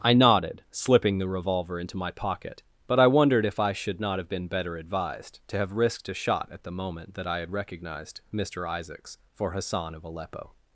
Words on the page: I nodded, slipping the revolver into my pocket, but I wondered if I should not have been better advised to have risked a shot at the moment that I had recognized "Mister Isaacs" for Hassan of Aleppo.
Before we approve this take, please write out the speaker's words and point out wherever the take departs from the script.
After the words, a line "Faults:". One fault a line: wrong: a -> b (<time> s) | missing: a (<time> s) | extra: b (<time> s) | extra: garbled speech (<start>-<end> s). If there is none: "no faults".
I nodded, slipping the revolver into my pocket, but I wondered if I should not have been better advised to have risked a shot at the moment that I had recognized "Mister Isaacs" for Hassan of Aleppo.
Faults:
no faults